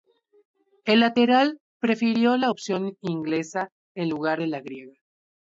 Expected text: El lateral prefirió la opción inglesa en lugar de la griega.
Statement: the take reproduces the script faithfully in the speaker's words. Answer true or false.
true